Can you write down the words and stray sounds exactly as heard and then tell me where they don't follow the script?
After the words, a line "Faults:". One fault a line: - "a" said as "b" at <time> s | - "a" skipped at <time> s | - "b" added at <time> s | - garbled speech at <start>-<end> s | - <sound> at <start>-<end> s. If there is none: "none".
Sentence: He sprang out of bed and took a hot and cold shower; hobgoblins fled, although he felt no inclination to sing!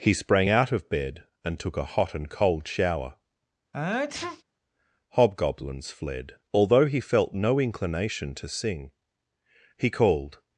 He sprang out of bed and took a hot and cold shower; hobgoblins fled, although he felt no inclination to sing! He called
Faults:
- sneeze at 3.7-4.4 s
- "He called" added at 9.8 s